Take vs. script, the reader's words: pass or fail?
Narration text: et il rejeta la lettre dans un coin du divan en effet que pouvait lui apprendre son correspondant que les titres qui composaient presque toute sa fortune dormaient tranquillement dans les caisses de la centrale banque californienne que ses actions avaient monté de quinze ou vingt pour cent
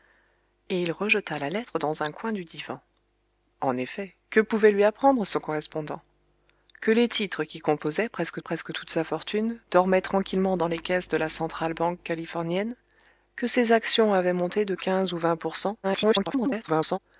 fail